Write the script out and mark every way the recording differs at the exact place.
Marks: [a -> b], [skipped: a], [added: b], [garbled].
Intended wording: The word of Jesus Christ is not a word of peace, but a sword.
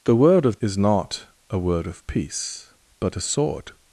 The word of [skipped: Jesus Christ] is not a word of peace, but a sword.